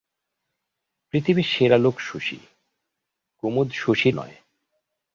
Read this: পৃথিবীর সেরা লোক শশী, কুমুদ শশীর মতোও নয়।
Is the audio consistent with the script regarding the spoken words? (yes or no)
no